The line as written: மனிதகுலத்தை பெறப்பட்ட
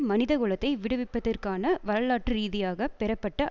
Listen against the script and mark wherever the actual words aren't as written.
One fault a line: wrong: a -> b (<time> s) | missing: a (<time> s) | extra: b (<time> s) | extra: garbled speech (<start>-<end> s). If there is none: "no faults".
extra: விடுவிப்பதற்கான வரலாற்று ரீதியாக (0.8 s)